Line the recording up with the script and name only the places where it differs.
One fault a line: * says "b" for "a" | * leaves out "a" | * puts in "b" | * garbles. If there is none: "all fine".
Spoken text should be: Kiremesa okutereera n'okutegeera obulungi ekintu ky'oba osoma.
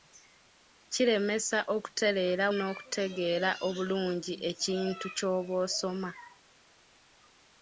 all fine